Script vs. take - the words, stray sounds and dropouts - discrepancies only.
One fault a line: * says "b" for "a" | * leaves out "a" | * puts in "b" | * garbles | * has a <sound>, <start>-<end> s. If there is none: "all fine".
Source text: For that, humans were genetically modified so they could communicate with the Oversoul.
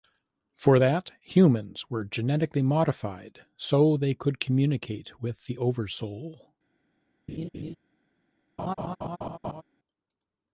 * has a laugh, 7.3-7.8 s
* has a laugh, 8.6-9.6 s